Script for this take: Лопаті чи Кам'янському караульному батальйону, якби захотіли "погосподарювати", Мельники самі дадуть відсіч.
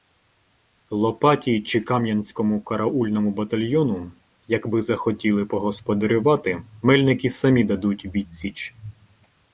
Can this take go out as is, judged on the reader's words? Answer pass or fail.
pass